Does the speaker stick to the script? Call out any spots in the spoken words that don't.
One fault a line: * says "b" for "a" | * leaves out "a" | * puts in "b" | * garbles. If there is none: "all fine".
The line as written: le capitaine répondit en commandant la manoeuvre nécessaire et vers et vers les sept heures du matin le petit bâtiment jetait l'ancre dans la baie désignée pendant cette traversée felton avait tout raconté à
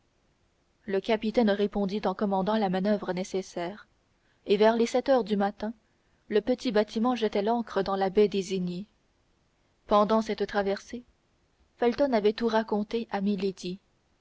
* leaves out "et vers"